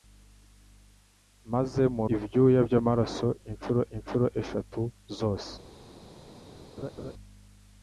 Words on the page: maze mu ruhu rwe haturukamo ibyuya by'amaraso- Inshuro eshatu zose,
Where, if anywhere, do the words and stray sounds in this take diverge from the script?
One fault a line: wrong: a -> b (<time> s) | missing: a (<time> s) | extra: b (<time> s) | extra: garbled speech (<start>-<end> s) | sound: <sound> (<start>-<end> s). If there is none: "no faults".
missing: ruhu rwe haturukamo (2.0 s)
extra: Inshuro (4.0 s)
sound: laugh (6.8-7.1 s)